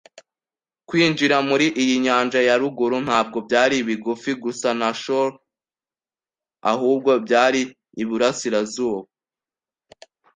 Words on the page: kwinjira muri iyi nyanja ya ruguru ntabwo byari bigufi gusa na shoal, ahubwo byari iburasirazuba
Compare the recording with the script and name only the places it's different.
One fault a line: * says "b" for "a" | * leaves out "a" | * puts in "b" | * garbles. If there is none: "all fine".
all fine